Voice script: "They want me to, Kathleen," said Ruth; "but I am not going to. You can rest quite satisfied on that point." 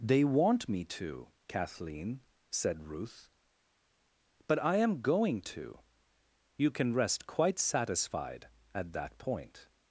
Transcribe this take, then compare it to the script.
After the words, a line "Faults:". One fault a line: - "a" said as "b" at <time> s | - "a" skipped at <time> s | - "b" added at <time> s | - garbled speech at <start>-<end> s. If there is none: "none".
"They want me to, Kathleen," said Ruth; "but I am going to. You can rest quite satisfied at that point."
Faults:
- "not" skipped at 5.0 s
- "on" said as "at" at 8.7 s